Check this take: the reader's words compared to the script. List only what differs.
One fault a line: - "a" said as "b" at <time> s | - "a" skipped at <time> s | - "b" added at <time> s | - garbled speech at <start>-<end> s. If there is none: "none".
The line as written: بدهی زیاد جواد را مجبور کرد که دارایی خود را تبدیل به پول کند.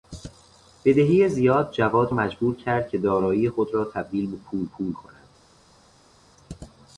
- "را" skipped at 2.1 s
- "پول" added at 4.6 s